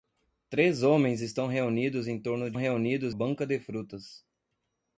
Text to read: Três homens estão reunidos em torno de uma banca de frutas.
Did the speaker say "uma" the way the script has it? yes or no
no